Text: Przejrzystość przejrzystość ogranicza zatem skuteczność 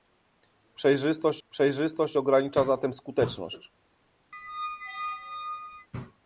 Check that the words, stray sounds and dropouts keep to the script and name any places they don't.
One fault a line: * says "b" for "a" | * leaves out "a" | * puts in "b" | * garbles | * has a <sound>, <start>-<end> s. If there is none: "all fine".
* has a squeak, 4.3-5.9 s